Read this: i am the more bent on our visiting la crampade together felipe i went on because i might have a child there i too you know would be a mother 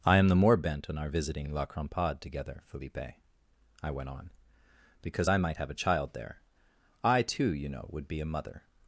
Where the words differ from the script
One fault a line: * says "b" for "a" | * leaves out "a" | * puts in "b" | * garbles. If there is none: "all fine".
all fine